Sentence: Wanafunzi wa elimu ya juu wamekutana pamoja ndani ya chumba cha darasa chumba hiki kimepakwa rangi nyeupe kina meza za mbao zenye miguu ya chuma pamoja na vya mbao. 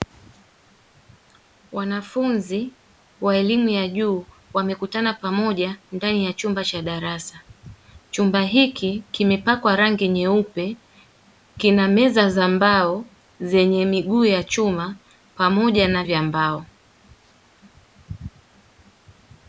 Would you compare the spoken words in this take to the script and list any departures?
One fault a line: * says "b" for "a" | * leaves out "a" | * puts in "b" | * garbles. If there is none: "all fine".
all fine